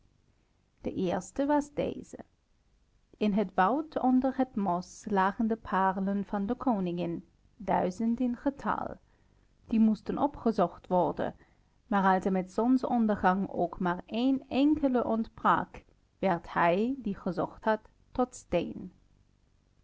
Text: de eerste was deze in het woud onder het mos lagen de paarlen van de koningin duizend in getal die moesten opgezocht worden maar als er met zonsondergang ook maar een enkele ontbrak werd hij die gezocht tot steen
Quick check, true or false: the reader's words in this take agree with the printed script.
false